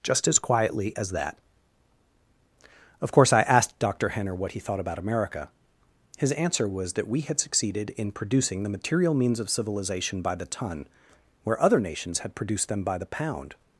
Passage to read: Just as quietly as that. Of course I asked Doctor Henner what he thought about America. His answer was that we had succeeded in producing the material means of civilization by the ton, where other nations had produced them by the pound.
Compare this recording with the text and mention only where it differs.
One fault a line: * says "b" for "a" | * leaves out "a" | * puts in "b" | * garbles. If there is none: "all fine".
all fine